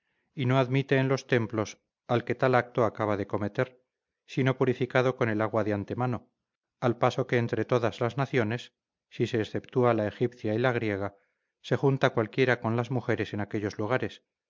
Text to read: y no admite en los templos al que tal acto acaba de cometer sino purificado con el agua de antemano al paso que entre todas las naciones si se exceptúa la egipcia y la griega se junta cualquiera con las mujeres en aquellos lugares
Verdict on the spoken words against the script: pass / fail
pass